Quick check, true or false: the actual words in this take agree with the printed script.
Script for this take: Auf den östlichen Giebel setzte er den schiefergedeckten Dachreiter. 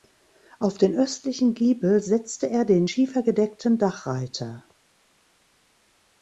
true